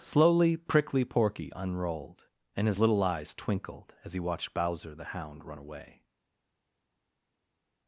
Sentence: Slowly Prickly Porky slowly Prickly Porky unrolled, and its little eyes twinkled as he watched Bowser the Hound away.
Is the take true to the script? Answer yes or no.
no